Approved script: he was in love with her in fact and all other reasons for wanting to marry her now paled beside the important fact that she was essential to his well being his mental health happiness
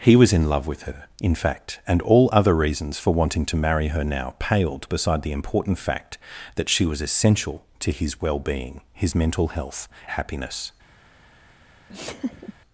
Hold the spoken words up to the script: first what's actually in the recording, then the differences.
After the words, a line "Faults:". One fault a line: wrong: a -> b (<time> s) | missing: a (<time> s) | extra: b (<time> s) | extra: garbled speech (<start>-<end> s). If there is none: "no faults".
he was in love with her in fact and all other reasons for wanting to marry her now paled beside the important fact that she was essential to his well being his mental health happiness
Faults:
no faults